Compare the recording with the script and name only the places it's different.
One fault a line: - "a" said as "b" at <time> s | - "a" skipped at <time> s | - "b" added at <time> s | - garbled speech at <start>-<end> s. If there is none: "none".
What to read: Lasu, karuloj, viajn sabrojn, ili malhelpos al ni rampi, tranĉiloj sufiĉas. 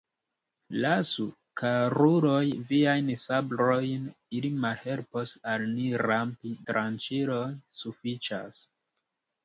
none